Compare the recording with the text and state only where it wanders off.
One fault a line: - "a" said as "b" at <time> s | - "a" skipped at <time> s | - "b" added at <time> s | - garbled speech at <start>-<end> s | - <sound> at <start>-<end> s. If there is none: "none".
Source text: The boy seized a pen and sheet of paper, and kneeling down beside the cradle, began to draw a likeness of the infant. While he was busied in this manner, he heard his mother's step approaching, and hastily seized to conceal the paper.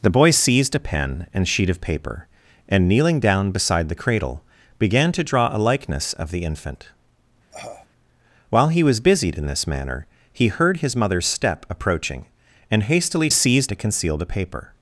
- cough at 7.5-7.9 s